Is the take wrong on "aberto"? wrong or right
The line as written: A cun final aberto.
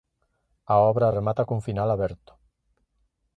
right